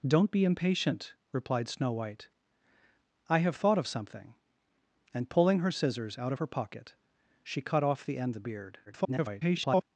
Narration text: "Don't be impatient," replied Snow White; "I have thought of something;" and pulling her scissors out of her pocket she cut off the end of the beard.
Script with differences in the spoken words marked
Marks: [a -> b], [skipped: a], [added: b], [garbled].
"Don't be impatient," replied Snow White; "I have thought of something;" and pulling her scissors out of her pocket she cut off the end [skipped: of] the beard. [garbled]